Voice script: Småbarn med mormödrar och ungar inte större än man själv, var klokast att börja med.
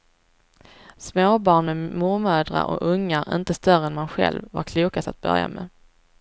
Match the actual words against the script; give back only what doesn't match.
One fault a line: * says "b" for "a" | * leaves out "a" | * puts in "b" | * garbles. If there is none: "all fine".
all fine